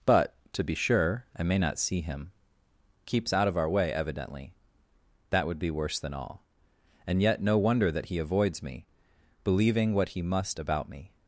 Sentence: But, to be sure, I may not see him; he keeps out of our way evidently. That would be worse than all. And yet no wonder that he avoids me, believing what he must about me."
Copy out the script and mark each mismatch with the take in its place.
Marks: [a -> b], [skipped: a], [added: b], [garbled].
But, to be sure, I may not see him; [skipped: he] keeps out of our way evidently. That would be worse than all. And yet no wonder that he avoids me, believing what he must about me."